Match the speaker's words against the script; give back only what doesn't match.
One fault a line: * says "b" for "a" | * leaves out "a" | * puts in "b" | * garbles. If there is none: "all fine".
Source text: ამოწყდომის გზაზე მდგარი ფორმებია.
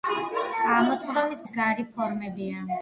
* leaves out "გზაზე"